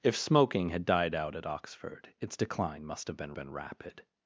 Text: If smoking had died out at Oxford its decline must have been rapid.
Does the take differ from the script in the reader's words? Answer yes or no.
yes